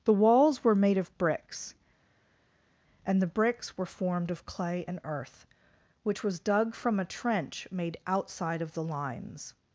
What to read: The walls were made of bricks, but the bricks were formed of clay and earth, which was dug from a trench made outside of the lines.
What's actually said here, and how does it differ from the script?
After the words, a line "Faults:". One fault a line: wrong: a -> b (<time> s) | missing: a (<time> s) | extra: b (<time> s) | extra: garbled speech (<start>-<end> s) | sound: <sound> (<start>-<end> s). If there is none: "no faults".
The walls were made of bricks, and the bricks were formed of clay and earth, which was dug from a trench made outside of the lines.
Faults:
wrong: but -> and (3.0 s)